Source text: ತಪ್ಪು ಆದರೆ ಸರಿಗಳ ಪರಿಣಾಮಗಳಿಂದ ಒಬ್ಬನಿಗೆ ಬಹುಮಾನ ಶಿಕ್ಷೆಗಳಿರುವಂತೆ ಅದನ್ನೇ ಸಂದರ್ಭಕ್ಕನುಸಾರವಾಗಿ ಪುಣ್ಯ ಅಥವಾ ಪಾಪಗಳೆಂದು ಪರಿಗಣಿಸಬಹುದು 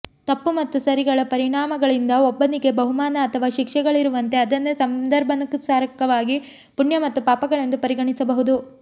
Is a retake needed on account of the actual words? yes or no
yes